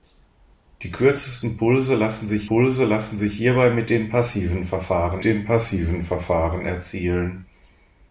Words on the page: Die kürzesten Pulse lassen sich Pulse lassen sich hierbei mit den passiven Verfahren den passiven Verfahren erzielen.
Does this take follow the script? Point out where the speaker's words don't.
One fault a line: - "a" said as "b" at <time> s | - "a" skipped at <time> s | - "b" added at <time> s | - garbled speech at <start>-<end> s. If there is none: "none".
none